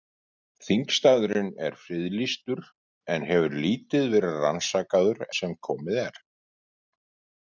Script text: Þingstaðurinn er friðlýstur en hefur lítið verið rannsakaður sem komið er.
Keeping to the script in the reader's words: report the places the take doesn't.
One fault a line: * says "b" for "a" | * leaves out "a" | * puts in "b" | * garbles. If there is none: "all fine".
all fine